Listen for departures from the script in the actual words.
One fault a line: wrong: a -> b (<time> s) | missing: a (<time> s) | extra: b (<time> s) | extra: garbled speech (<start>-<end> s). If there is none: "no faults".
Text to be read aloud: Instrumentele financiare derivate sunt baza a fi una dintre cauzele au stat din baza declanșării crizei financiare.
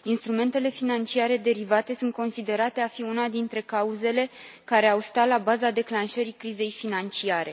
wrong: baza -> considerate (2.1 s)
extra: care (4.6 s)
wrong: din -> la (5.3 s)